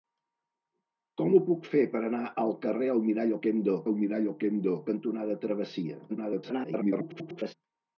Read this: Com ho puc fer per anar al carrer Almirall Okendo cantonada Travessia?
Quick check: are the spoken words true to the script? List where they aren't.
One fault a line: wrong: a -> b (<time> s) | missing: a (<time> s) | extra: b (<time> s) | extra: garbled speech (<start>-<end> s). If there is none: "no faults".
extra: Almirall Okendo (3.9 s)
extra: garbled speech (6.1-7.5 s)